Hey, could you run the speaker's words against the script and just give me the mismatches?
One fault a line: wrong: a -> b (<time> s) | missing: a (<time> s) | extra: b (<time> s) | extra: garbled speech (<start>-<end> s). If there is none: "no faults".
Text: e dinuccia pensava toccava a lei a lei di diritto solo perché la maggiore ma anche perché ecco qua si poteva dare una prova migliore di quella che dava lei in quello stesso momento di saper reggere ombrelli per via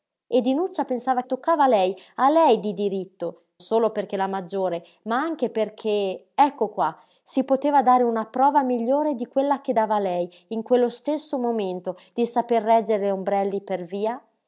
no faults